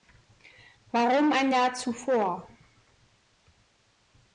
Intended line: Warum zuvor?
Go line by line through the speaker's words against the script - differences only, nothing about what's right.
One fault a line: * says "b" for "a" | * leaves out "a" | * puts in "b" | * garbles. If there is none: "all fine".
* puts in "ein Jahr"